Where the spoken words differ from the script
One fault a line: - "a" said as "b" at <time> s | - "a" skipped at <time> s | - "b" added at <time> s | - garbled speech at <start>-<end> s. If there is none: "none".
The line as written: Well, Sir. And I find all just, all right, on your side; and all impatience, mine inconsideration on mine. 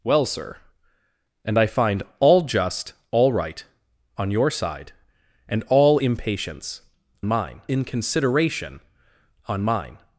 none